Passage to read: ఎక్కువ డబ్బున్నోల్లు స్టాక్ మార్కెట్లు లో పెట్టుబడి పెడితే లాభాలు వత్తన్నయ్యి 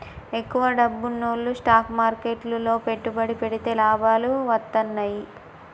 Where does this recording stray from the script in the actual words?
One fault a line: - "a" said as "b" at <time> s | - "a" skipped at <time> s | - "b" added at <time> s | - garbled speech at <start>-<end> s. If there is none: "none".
none